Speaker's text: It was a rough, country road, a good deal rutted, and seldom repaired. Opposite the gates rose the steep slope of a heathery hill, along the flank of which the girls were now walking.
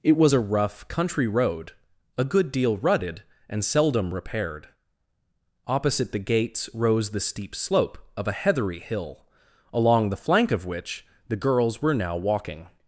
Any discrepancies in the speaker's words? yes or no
no